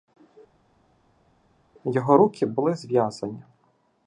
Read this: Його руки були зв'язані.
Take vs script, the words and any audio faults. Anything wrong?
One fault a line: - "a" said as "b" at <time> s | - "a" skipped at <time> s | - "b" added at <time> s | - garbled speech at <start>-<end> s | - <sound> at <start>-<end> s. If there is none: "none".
none